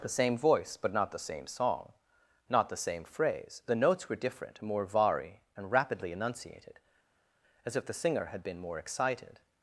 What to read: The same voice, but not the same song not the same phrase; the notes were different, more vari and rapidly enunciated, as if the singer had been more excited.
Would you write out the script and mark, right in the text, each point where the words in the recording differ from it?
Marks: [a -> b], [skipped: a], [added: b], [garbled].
The same voice, but not the same song not the same phrase; the notes were different, more vari and rapidly enunciated, as if the singer had been more excited.